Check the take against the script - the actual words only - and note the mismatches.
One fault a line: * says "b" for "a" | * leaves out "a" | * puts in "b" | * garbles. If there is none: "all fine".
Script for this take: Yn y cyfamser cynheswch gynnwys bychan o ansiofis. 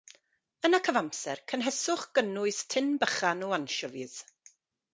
* puts in "tin"